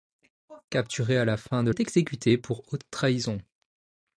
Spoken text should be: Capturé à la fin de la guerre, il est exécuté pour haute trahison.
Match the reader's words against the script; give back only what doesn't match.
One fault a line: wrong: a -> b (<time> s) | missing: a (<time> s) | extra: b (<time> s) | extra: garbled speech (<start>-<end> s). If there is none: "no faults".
missing: la guerre il (1.7 s)